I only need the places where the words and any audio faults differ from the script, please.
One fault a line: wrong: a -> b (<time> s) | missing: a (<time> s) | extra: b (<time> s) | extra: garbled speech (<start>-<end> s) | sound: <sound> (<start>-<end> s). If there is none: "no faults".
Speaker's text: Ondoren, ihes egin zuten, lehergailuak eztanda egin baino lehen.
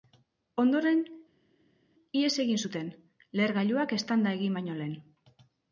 no faults